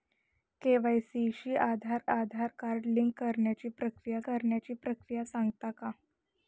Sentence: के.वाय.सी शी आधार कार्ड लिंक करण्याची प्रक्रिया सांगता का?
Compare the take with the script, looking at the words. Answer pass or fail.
fail